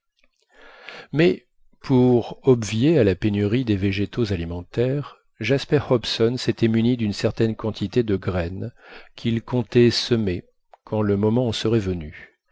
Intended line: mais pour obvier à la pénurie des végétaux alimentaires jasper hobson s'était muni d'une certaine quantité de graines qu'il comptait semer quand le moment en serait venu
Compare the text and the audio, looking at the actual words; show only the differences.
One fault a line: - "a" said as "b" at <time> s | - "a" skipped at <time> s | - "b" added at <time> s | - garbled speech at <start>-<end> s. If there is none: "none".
none